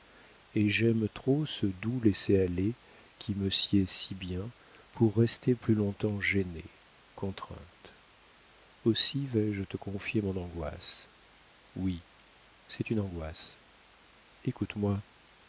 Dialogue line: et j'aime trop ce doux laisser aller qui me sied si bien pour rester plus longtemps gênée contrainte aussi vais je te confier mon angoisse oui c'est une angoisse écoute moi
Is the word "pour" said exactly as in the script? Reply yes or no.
yes